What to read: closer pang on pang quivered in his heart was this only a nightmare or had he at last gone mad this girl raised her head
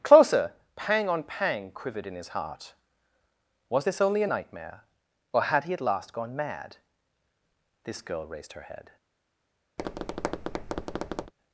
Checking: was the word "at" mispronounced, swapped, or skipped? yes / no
no